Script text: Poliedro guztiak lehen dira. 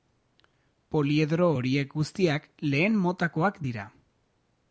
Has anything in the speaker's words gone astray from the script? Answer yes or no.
yes